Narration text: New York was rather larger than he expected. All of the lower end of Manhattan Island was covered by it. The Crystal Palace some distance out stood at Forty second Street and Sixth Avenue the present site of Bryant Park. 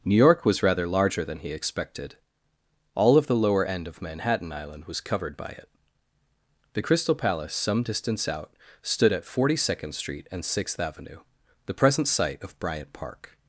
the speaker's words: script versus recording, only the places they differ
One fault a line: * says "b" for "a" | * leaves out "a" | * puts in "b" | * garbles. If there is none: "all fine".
all fine